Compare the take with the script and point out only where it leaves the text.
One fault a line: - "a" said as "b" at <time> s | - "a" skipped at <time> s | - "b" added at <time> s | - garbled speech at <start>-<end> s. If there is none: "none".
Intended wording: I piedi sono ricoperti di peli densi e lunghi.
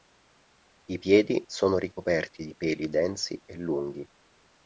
none